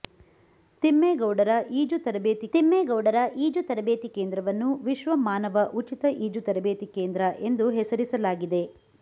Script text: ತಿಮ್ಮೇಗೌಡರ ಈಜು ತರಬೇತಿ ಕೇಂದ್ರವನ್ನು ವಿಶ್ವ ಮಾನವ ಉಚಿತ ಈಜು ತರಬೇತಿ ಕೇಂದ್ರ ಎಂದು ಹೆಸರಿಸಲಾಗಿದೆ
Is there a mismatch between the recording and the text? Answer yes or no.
yes